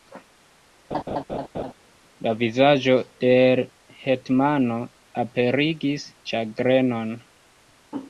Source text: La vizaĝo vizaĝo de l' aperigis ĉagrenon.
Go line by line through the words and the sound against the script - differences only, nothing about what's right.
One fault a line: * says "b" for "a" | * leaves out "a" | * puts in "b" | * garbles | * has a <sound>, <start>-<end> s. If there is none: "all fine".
* has a laugh, 0.9-1.7 s
* leaves out "vizaĝo"
* puts in "hetmano"